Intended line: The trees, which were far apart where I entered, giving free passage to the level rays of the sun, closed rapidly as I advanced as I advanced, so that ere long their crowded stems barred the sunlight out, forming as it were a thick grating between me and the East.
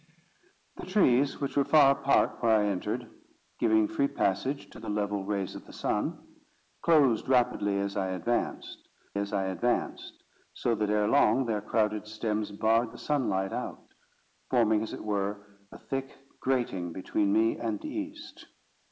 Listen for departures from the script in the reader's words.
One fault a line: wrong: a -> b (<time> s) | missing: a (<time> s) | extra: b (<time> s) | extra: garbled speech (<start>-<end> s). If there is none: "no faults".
no faults